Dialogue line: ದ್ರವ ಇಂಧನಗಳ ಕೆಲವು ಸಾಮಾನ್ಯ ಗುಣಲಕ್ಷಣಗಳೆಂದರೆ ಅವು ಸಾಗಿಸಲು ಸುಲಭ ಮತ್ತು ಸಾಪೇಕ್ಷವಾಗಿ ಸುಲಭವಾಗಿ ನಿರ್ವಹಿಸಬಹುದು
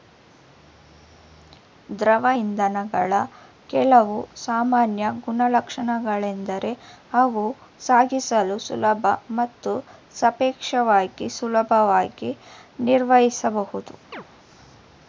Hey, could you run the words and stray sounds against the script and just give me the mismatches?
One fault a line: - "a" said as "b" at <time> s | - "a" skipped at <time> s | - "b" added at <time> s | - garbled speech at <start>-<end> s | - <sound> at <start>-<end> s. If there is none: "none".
- chirp at 14.1-14.2 s